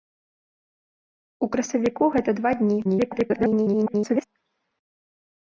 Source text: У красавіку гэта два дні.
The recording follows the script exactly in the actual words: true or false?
false